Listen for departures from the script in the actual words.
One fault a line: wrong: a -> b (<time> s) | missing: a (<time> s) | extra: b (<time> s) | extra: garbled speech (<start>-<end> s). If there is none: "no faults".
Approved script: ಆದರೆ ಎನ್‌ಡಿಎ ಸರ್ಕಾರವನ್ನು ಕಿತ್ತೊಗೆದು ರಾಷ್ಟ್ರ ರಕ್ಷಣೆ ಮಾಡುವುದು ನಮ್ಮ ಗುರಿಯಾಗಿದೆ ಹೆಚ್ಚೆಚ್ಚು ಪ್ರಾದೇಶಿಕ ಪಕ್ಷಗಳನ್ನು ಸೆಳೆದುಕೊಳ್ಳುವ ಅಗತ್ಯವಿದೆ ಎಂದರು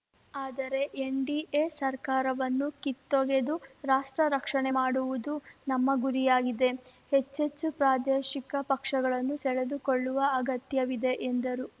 no faults